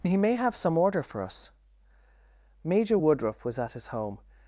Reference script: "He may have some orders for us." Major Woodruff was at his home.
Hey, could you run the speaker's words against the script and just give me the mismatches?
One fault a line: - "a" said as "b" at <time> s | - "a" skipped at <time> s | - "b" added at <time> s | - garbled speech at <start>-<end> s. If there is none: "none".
- "orders" said as "order" at 0.8 s